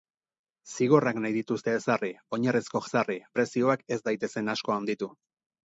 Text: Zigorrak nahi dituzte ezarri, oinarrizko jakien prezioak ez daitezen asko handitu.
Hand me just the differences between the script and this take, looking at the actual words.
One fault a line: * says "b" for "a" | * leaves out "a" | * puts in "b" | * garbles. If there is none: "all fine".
* says "ezarri" for "jakien"